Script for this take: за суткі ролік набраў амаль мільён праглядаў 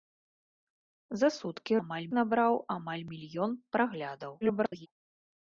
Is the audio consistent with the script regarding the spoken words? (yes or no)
no